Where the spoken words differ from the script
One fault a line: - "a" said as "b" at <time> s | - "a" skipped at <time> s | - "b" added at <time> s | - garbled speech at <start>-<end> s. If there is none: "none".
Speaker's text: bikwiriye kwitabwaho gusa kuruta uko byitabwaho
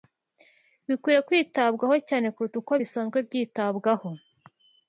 - "gusa" said as "cyane" at 2.1 s
- "bisanzwe" added at 2.8 s